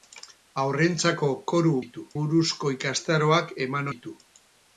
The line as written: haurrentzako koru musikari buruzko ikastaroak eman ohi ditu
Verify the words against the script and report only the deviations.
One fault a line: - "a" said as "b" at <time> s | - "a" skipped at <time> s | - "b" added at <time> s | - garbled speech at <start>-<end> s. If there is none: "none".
- "musikari" said as "ditu" at 1.8 s
- "ohi" skipped at 3.9 s